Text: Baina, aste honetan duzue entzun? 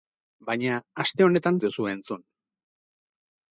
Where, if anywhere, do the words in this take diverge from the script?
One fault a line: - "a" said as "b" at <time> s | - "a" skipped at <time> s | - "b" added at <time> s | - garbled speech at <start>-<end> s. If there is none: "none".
none